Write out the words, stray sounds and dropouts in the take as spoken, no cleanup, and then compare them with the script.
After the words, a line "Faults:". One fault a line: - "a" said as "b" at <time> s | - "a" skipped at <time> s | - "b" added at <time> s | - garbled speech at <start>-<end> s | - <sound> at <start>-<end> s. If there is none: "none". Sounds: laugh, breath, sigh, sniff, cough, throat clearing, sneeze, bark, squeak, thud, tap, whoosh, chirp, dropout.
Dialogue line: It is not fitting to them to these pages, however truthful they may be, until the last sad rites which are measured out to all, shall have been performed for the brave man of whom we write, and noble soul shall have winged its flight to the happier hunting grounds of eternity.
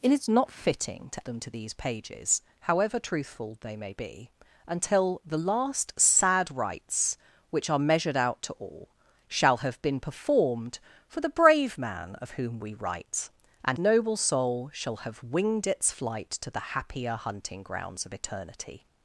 It is not fitting to them to these pages, however truthful they may be, until the last sad rites which are measured out to all, shall have been performed for the brave man of whom we write, and noble soul shall have winged its flight to the happier hunting grounds of eternity.
Faults:
none